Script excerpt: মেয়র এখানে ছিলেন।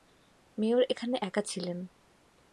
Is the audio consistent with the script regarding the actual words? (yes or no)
no